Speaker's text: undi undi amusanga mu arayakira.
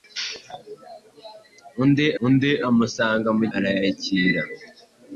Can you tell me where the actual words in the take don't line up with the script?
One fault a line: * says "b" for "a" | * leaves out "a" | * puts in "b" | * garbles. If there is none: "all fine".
all fine